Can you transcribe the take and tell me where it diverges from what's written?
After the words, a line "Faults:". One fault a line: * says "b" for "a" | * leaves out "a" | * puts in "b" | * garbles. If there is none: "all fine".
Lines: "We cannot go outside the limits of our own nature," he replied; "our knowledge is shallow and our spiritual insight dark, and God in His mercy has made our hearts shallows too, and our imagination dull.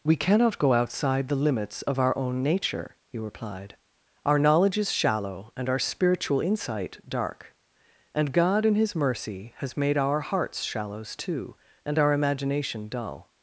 "We cannot go outside the limits of our own nature," he replied; "our knowledge is shallow and our spiritual insight dark, and God in His mercy has made our hearts shallows too, and our imagination dull.
Faults:
all fine